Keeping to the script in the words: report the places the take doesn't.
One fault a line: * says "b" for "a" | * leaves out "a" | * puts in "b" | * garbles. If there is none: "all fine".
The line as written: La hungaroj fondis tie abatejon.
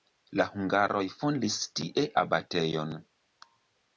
all fine